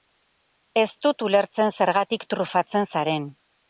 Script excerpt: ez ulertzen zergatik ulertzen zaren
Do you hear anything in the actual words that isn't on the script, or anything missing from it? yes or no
yes